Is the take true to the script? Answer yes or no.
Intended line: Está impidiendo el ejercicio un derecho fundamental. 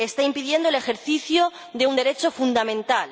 no